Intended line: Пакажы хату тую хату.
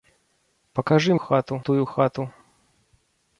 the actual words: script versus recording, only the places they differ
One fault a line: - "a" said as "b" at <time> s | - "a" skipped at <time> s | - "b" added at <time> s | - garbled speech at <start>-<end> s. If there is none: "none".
none